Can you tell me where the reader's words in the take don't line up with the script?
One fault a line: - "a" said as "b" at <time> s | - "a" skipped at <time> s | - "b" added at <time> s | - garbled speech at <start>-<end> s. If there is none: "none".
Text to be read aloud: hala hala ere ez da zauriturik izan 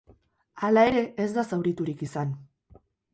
- "hala" skipped at 0.8 s